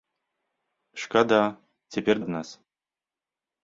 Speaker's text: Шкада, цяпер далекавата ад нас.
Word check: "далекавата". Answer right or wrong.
wrong